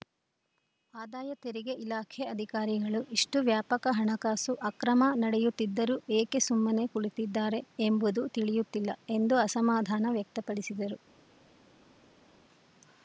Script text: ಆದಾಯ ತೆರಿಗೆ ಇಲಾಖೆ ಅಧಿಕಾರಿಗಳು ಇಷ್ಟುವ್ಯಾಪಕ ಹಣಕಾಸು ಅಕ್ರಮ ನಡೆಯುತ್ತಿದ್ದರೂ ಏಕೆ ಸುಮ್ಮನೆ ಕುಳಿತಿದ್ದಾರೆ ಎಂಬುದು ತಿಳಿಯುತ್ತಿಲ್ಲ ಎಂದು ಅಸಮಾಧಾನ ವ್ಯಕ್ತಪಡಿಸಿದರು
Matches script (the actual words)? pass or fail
pass